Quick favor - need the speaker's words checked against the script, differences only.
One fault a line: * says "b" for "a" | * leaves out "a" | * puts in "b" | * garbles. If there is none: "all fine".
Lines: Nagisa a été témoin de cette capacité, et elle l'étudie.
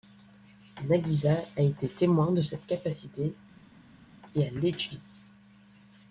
all fine